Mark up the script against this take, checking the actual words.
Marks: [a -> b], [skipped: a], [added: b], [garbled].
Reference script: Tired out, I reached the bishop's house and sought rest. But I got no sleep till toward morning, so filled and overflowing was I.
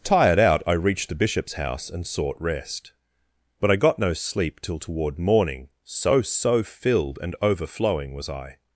Tired out, I reached the bishop's house and sought rest. But I got no sleep till toward morning, so [added: so] filled and overflowing was I.